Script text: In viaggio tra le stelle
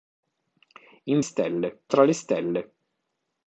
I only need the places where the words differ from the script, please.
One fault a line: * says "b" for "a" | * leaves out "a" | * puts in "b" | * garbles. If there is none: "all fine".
* says "stelle" for "viaggio"